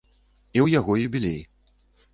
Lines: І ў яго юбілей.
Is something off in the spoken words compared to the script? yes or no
no